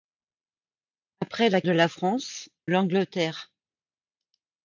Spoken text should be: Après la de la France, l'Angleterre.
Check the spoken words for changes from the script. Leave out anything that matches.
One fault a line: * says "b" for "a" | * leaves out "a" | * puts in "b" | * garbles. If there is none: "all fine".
all fine